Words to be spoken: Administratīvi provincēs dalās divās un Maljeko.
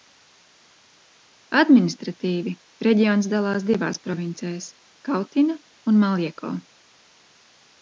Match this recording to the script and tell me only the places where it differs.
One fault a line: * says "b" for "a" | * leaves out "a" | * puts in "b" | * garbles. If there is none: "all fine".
* says "reģions" for "provincēs"
* puts in "provincēs Kautina"